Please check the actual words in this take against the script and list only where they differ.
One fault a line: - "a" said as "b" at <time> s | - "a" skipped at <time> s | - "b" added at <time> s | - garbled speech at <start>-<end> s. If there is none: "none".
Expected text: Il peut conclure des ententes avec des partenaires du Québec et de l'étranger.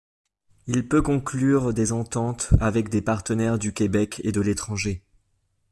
none